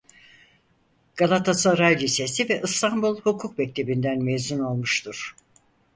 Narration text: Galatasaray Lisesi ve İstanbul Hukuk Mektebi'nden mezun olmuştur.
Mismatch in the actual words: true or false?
false